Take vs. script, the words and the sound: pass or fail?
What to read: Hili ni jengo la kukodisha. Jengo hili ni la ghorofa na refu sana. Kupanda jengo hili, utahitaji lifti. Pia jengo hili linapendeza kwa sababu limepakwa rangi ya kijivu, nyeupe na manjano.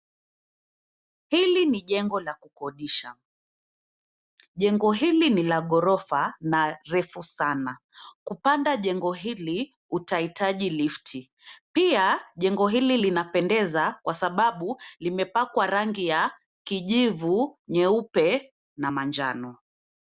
pass